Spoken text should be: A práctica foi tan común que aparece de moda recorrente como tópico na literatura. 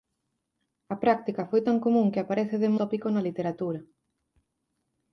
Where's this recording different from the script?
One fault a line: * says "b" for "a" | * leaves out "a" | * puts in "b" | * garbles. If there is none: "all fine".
* leaves out "moda recorrente como"